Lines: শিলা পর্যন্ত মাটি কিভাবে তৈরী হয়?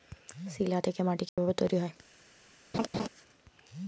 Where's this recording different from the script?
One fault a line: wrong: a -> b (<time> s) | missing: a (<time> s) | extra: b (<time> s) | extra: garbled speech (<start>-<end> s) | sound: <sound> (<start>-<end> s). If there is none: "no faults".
wrong: পর্যন্ত -> থেকে (0.8 s)
sound: dropout (1.3-1.4 s)
sound: laugh (2.7-3.1 s)